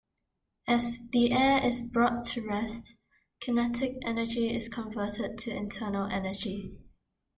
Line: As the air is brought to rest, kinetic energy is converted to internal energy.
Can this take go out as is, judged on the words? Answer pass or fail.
pass